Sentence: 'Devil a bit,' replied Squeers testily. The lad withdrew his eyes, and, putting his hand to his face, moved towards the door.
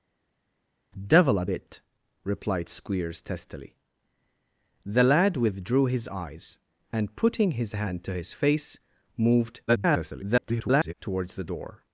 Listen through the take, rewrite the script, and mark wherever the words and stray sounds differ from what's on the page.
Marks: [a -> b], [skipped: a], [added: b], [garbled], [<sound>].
'Devil a bit,' replied Squeers testily. The lad withdrew his eyes, and, putting his hand to his face, moved [garbled] towards the door.